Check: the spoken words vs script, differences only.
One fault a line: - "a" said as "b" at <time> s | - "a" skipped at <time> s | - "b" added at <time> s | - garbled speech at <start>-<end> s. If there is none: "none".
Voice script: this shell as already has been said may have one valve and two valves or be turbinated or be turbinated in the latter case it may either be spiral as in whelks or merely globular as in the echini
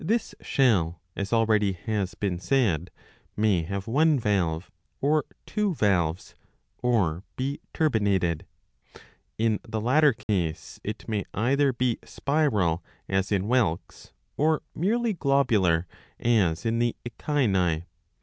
- "and" said as "or" at 5.0 s
- "or be turbinated" skipped at 8.4 s